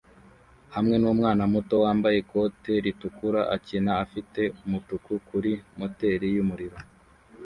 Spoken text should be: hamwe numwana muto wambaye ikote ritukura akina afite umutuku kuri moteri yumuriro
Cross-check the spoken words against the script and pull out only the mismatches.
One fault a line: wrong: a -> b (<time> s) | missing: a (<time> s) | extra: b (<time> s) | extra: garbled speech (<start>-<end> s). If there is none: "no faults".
no faults